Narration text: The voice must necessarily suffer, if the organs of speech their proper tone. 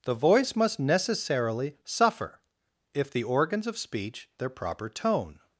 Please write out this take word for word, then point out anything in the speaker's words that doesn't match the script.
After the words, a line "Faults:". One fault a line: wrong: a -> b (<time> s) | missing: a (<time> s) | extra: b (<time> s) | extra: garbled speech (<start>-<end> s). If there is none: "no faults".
The voice must necessarily suffer, if the organs of speech their proper tone.
Faults:
no faults